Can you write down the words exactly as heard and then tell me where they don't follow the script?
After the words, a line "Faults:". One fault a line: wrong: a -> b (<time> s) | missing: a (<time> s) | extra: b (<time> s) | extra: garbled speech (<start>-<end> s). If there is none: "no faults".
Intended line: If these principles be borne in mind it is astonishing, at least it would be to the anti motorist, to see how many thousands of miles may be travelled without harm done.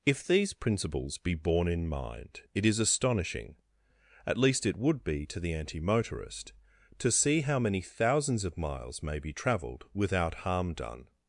If these principles be borne in mind it is astonishing, at least it would be to the anti motorist, to see how many thousands of miles may be travelled without harm done.
Faults:
no faults